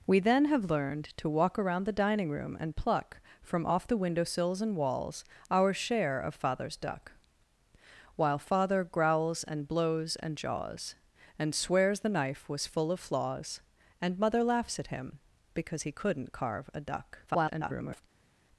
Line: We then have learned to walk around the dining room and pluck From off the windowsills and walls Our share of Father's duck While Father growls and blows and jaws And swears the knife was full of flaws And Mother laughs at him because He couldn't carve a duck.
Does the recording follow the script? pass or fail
fail